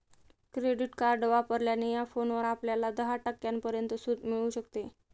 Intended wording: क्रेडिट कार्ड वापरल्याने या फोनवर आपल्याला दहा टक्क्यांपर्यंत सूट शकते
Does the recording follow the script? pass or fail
fail